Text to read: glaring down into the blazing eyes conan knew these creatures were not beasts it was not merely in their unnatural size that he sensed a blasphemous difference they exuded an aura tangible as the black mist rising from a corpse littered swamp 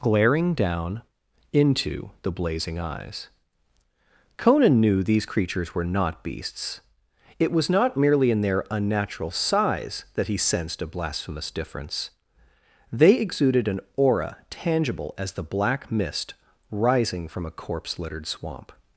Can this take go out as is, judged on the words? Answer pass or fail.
pass